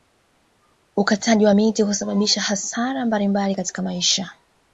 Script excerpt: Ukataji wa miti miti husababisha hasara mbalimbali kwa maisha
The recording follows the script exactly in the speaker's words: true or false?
false